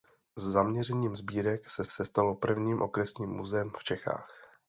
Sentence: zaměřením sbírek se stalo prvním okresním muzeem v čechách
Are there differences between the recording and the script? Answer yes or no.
yes